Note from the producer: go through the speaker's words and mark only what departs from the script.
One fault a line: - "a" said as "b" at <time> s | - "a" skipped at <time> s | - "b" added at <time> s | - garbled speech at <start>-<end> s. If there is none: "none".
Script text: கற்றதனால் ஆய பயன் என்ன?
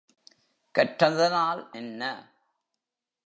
- "ஆய பயன்" skipped at 1.6 s